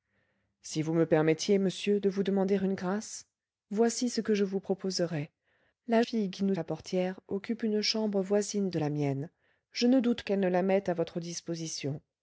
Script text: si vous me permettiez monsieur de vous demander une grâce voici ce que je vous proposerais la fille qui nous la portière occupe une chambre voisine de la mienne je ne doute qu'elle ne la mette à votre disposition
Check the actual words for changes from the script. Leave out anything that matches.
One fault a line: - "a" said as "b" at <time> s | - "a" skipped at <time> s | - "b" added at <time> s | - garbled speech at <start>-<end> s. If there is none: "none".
none